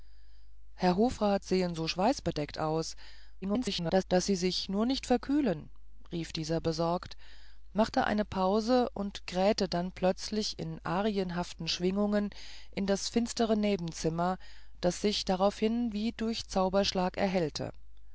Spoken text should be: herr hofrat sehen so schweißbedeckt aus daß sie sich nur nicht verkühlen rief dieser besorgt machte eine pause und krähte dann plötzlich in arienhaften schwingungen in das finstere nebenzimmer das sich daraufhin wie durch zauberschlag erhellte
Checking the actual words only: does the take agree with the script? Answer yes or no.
no